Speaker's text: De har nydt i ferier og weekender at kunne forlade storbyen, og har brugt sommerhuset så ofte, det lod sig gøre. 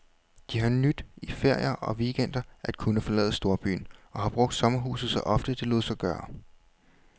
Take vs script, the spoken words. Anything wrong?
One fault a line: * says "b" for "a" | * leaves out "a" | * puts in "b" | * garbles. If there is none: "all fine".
all fine